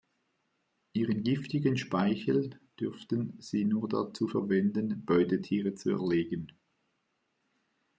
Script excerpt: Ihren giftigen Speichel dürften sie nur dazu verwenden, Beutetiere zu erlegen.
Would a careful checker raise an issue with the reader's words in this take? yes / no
no